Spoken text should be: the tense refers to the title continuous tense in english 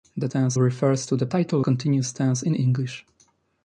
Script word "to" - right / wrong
right